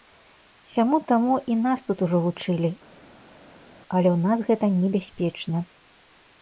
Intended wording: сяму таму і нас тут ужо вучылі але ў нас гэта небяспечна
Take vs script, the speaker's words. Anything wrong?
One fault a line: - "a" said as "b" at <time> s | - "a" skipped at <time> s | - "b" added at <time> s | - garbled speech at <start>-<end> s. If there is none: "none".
none